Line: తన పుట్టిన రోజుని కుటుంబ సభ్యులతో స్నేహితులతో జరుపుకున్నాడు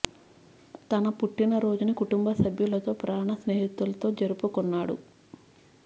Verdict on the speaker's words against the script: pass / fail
fail